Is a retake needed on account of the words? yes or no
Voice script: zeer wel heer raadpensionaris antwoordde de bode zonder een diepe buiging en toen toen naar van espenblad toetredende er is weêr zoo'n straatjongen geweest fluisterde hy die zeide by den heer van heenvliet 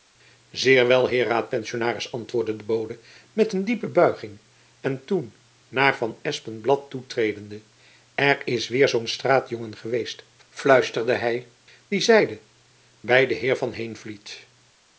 yes